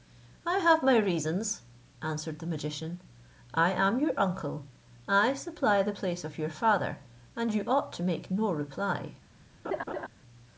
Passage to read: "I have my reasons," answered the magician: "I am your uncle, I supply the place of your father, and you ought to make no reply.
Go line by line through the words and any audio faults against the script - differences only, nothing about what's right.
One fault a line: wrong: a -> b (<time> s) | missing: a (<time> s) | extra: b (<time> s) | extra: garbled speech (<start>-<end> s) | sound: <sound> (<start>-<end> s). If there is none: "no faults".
sound: laugh (9.6-10.1 s)